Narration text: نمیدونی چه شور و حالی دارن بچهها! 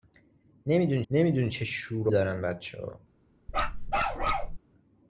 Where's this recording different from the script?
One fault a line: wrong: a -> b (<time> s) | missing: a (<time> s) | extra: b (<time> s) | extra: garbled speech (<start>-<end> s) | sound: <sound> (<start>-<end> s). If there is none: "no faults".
extra: نمیدونی (1.1 s)
missing: حالی (2.1 s)
sound: bark (3.5-4.6 s)